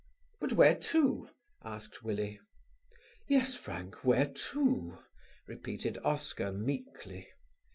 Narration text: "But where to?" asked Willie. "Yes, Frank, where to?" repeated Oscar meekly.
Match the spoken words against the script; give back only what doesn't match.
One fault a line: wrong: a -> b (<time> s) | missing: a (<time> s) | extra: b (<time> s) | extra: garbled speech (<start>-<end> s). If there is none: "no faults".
no faults